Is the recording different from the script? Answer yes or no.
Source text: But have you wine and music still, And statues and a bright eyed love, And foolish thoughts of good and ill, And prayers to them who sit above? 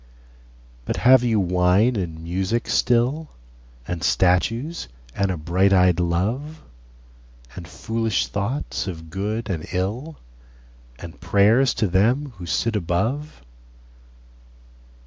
no